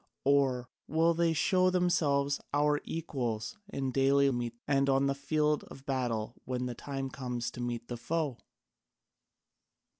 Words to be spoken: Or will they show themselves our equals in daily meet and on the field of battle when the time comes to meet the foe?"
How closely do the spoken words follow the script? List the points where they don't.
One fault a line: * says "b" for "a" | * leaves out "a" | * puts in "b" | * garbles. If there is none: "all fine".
all fine